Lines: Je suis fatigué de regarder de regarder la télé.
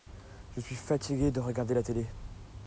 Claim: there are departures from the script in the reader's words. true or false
true